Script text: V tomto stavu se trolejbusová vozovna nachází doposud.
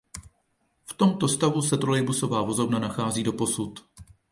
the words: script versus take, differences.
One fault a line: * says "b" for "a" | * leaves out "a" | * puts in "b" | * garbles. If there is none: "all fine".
all fine